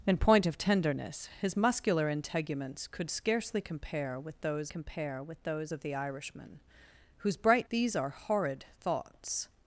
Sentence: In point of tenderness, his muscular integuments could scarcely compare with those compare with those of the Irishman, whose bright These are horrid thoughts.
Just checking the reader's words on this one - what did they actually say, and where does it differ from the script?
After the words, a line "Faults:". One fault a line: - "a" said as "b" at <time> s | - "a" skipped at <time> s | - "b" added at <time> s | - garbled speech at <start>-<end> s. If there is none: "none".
In point of tenderness, his muscular integuments could scarcely compare with those compare with those of the Irishman, whose bright These are horrid thoughts.
Faults:
none